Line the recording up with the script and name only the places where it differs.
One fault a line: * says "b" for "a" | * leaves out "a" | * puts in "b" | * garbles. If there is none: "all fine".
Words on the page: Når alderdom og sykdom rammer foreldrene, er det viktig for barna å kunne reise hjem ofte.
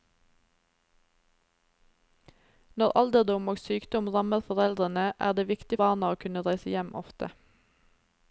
* leaves out "for"